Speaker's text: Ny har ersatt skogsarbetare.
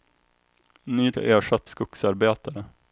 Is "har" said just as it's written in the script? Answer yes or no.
yes